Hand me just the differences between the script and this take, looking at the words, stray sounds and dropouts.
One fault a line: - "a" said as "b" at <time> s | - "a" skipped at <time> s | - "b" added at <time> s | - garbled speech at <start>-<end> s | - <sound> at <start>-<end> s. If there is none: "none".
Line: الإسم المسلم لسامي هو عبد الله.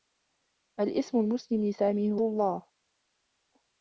- "عبد" skipped at 2.2 s